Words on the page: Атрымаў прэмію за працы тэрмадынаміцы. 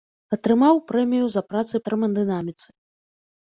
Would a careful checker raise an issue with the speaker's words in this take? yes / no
no